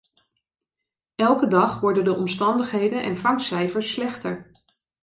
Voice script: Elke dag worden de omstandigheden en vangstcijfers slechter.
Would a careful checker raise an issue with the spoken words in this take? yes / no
no